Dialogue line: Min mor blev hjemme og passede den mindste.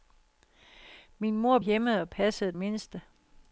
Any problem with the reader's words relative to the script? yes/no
yes